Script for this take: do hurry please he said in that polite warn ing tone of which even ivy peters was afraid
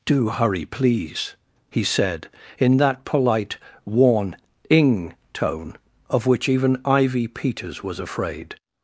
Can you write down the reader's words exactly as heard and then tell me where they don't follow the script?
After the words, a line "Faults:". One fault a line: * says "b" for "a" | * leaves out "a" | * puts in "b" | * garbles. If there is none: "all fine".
do hurry please he said in that polite warn ing tone of which even ivy peters was afraid
Faults:
all fine